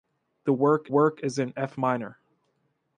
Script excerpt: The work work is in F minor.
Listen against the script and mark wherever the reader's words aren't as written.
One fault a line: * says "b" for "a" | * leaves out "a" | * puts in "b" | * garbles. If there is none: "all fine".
all fine